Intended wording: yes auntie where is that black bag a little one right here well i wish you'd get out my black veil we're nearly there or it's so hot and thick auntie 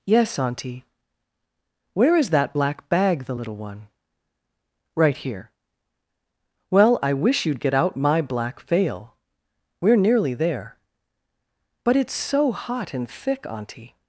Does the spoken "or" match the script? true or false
false